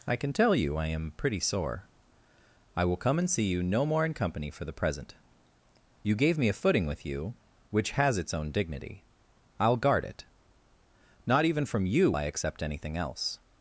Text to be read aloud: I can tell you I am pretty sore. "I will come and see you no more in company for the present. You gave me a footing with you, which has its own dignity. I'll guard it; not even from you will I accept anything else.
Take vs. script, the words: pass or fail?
fail